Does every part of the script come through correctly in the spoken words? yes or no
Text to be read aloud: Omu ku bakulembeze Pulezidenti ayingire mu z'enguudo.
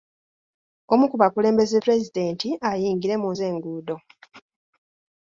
yes